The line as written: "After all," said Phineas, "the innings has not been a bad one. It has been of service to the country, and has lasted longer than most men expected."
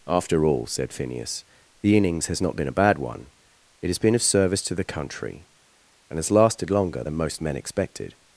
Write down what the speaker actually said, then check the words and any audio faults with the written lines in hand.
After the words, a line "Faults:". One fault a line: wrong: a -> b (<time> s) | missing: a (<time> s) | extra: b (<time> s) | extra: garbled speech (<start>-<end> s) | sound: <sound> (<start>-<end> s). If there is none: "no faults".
"After all," said Phineas, "the innings has not been a bad one. It has been of service to the country, and has lasted longer than most men expected."
Faults:
no faults